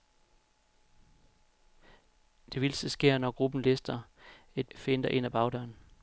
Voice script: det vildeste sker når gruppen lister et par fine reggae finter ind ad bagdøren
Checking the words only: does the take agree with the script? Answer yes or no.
no